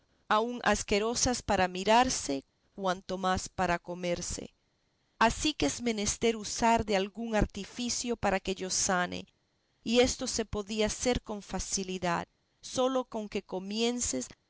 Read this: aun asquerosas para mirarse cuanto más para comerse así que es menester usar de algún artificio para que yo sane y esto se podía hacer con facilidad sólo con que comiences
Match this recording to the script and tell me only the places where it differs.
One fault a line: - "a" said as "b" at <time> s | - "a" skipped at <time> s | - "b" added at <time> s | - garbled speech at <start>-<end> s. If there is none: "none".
none